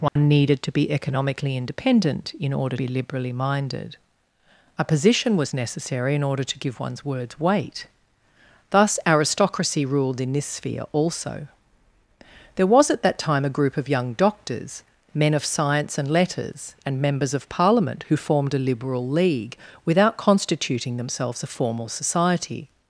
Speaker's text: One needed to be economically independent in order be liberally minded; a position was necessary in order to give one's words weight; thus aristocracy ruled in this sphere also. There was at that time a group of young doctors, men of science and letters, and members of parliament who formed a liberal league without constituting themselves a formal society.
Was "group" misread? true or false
false